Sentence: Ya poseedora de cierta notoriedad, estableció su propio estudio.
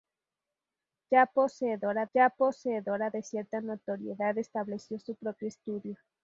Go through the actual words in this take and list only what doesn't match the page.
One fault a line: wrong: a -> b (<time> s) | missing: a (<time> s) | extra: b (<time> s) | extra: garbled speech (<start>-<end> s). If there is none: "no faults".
extra: ya poseedora (2.1 s)